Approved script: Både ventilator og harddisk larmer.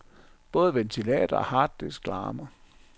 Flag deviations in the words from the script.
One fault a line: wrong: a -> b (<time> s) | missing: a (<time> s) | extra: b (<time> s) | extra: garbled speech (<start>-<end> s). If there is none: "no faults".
no faults